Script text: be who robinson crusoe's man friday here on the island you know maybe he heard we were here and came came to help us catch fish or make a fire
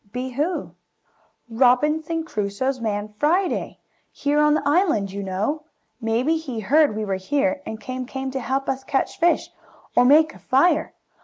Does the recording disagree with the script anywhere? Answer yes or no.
no